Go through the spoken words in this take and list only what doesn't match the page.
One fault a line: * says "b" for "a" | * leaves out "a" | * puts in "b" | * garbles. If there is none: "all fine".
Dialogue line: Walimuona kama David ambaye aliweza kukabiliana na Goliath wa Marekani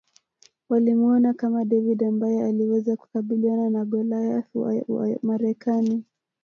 * puts in "wa"